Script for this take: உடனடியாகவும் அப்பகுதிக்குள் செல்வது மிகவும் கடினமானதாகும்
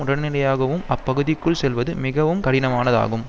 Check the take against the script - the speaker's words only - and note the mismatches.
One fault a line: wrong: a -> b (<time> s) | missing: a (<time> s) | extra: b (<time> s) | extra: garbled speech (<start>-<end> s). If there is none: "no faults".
no faults